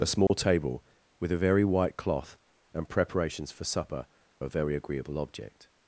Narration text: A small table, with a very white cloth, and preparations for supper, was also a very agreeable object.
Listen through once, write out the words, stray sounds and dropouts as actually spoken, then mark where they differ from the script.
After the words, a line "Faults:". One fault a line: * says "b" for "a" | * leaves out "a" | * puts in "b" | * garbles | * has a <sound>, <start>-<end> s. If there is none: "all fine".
A small table, with a very white cloth, and preparations for supper, a very agreeable object.
Faults:
* has a dropout, 0.3-0.3 s
* leaves out "was also"